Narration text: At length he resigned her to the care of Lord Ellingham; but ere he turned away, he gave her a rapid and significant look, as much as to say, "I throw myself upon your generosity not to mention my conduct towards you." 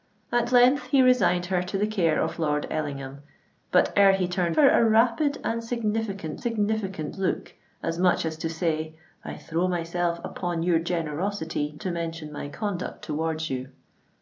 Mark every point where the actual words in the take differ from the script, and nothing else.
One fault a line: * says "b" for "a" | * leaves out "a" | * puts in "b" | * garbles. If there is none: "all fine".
* leaves out "away he gave"
* puts in "significant"
* leaves out "not"